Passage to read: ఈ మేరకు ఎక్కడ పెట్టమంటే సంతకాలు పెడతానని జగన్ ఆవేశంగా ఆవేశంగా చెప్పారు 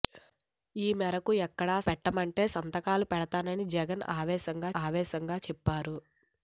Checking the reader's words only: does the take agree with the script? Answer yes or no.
yes